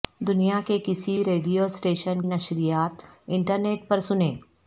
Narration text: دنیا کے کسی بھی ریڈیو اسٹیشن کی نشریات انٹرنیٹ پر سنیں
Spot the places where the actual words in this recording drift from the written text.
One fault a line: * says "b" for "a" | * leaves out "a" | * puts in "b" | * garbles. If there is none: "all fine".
* leaves out "بھی"
* leaves out "کی"